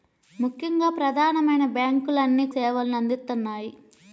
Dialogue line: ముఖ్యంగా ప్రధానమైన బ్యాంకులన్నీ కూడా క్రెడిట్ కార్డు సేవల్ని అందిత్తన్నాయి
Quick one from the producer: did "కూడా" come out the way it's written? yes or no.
no